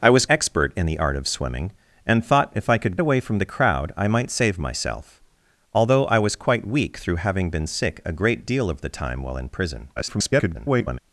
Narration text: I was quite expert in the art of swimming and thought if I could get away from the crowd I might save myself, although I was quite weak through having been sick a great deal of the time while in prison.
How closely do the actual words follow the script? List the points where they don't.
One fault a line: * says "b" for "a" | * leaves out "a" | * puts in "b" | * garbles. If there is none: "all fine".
* leaves out "quite"
* leaves out "get"
* garbles